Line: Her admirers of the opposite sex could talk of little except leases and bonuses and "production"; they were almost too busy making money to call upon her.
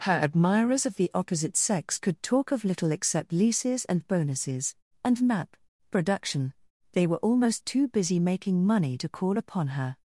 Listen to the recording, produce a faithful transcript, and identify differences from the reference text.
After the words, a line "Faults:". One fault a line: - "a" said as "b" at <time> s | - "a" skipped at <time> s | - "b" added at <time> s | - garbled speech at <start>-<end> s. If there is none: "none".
Her admirers of the opposite sex could talk of little except leases and bonuses and map "production"; they were almost too busy making money to call upon her.
Faults:
- "map" added at 5.2 s